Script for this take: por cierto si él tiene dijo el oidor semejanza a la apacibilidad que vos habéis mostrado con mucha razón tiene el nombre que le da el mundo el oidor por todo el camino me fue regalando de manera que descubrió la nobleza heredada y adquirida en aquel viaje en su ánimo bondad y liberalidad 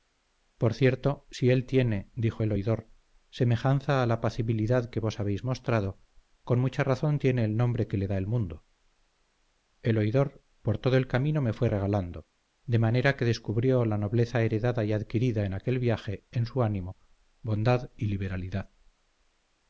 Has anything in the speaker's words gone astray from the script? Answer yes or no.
no